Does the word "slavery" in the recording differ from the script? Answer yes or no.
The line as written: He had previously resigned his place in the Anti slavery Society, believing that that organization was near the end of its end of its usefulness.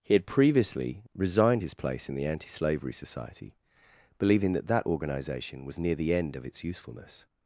no